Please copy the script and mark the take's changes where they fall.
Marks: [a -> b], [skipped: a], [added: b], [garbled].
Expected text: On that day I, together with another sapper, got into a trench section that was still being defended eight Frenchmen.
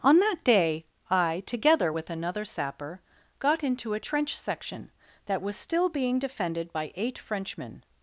On that day I, together with another sapper, got into a trench section that was still being defended [added: by] eight Frenchmen.